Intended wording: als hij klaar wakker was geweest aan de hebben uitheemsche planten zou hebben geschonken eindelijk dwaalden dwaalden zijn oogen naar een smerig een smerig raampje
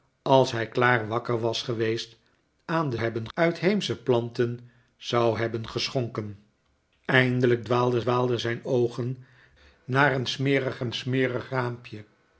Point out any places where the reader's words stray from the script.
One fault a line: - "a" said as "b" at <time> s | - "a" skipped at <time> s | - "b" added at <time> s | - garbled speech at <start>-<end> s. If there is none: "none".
none